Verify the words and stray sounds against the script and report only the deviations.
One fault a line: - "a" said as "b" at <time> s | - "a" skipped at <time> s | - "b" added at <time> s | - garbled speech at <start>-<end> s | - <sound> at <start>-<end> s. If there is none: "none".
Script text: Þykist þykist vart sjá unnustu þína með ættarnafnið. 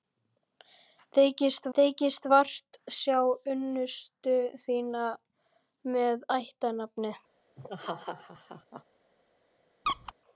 - laugh at 7.6-8.8 s
- squeak at 9.9-10.1 s